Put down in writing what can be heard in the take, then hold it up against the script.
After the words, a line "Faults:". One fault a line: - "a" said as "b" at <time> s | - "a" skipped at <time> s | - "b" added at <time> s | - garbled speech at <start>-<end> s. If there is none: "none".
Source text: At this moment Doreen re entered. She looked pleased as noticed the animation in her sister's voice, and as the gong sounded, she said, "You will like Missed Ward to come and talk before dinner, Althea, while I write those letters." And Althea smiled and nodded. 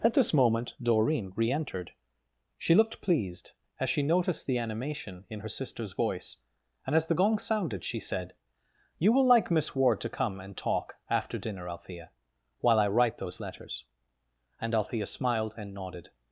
At this moment Doreen re entered. She looked pleased as she noticed the animation in her sister's voice, and as the gong sounded, she said, "You will like Miss Ward to come and talk after dinner, Althea, while I write those letters." And Althea smiled and nodded.
Faults:
- "she" added at 3.9 s
- "Missed" said as "Miss" at 9.5 s
- "before" said as "after" at 11.1 s